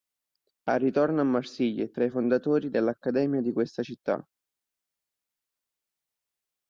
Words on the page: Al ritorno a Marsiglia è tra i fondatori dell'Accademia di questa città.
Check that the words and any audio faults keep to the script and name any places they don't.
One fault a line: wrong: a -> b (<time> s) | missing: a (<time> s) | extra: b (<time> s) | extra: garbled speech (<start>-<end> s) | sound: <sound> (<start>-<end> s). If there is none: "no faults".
no faults